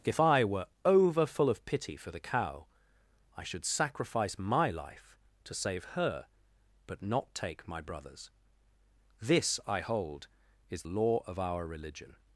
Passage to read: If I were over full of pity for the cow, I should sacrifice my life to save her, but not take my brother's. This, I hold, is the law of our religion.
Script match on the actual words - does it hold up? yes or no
no